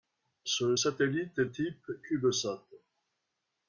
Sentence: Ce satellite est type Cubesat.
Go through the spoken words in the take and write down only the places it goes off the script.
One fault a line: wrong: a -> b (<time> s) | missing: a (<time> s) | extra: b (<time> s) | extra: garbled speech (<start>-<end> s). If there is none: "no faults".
no faults